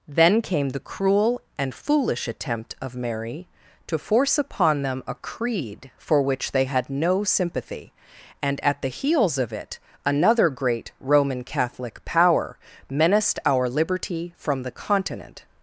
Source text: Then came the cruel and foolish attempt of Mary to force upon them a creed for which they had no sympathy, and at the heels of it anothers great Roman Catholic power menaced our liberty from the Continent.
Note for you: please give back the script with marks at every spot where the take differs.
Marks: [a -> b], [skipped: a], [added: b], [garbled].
Then came the cruel and foolish attempt of Mary to force upon them a creed for which they had no sympathy, and at the heels of it [anothers -> another] great Roman Catholic power menaced our liberty from the Continent.